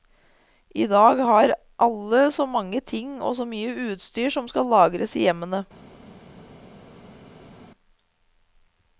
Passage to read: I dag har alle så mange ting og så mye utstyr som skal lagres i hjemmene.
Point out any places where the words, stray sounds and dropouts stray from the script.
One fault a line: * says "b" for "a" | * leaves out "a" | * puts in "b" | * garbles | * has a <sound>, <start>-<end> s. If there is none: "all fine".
all fine